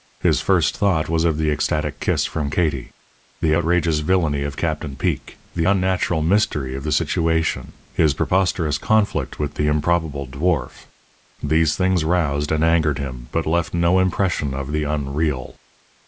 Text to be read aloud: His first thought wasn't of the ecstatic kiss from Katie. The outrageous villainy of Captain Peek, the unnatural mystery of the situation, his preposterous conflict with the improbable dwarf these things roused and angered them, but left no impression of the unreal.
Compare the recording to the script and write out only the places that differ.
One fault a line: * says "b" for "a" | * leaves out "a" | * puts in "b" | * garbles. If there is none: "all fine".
* says "was" for "wasn't"
* says "him" for "them"